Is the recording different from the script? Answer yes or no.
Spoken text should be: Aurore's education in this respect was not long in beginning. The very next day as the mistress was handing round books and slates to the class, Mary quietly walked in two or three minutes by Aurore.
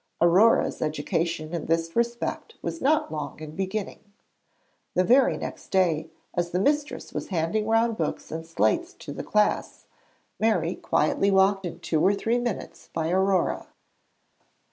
no